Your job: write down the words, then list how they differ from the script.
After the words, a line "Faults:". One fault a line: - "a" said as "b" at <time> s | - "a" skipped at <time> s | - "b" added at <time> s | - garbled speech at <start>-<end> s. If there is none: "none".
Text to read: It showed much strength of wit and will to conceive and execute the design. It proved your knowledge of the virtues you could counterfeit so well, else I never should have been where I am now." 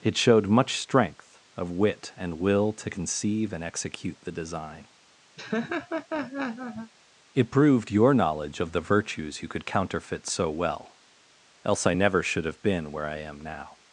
It showed much strength of wit and will to conceive and execute the design. It proved your knowledge of the virtues you could counterfeit so well, else I never should have been where I am now."
Faults:
none